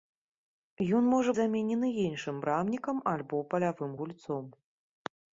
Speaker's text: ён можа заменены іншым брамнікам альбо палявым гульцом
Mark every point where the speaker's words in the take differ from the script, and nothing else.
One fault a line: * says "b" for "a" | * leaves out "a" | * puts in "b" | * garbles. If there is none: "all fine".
all fine